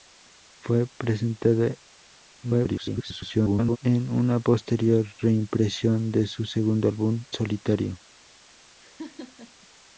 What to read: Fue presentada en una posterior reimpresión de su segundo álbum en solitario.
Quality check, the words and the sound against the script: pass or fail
fail